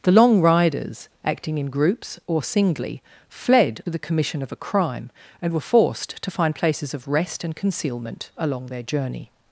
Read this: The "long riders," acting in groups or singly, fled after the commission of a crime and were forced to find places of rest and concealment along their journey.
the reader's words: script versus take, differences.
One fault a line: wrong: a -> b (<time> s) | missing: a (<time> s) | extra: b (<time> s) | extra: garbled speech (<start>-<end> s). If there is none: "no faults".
missing: after (3.8 s)